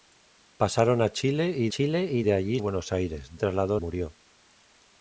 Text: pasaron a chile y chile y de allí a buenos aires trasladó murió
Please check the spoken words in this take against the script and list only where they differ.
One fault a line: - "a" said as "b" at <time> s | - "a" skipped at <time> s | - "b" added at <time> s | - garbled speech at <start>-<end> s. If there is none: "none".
none